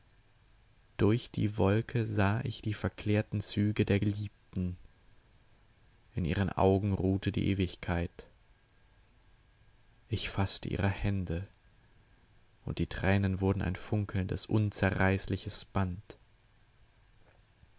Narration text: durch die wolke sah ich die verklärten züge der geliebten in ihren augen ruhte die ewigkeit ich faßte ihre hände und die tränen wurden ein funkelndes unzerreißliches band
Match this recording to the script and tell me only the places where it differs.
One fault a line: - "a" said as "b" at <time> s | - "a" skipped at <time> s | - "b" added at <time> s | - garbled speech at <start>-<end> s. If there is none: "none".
none